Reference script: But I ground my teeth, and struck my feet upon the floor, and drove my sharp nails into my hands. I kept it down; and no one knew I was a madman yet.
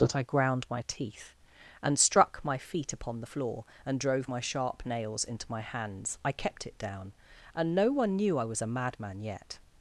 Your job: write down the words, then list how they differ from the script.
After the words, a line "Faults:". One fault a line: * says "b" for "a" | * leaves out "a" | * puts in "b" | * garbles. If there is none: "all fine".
But I ground my teeth, and struck my feet upon the floor, and drove my sharp nails into my hands. I kept it down; and no one knew I was a madman yet.
Faults:
all fine